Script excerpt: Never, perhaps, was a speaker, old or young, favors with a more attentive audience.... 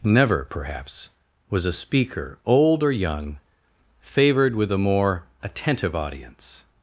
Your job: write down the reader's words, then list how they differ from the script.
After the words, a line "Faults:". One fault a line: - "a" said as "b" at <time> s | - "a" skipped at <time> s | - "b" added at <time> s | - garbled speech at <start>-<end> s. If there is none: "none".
Never, perhaps, was a speaker, old or young, favored with a more attentive audience....
Faults:
- "favors" said as "favored" at 4.0 s